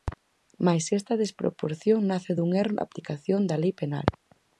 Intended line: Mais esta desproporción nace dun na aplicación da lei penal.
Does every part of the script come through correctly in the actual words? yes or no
no